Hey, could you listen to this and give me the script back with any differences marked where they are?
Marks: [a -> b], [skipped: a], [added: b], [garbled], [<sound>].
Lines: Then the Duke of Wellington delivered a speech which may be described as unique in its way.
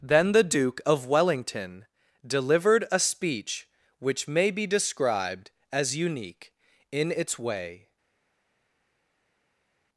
Then the Duke of Wellington delivered a speech which may be described as unique in its way.